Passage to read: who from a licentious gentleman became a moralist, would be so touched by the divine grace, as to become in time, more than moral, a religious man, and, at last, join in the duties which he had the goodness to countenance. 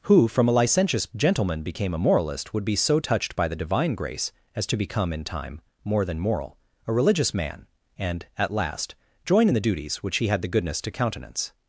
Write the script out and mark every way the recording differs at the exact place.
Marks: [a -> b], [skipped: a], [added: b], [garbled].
who from a licentious gentleman became a moralist, would be so touched by the divine grace, as to become in time, more than moral, a religious man, and, at last, join in the duties which he had the goodness to countenance.